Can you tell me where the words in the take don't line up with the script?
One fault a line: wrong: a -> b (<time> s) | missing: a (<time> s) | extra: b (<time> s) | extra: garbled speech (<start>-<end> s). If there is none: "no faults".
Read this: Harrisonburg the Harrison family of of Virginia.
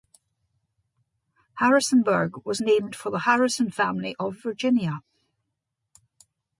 extra: was named for (2.4 s)
missing: of (4.4 s)